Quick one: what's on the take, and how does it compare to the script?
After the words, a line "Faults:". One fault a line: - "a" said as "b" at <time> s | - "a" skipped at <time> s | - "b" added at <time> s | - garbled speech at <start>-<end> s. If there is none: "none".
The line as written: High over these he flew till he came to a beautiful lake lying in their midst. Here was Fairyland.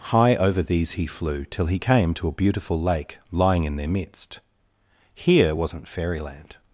High over these he flew till he came to a beautiful lake lying in their midst. Here wasn't Fairyland.
Faults:
- "was" said as "wasn't" at 5.5 s